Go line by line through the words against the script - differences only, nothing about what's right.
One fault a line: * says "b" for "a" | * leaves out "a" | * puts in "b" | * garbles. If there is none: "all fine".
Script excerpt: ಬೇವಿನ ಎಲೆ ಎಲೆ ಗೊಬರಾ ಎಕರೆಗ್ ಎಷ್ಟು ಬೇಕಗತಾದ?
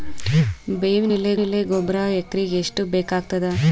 all fine